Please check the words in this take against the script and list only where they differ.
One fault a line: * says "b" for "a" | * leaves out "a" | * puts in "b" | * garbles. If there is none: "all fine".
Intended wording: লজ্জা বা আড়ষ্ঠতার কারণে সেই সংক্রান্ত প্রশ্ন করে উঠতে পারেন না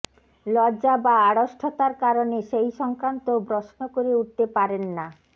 all fine